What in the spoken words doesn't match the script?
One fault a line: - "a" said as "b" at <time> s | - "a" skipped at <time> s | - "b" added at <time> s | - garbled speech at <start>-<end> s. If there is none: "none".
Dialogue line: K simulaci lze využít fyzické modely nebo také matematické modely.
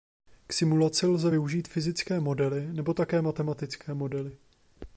none